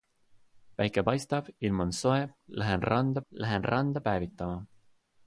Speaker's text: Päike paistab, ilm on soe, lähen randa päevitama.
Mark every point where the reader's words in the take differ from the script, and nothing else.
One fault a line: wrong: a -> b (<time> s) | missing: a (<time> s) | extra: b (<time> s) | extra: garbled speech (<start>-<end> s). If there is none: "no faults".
extra: lähen randa (3.3 s)